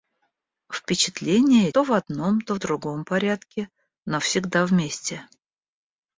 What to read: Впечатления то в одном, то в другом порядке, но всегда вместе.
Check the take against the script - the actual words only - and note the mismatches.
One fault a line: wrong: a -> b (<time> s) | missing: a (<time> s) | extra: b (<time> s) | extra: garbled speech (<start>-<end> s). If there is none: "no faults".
no faults